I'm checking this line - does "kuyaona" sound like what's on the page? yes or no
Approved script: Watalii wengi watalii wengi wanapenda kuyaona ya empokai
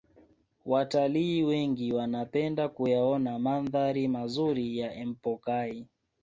no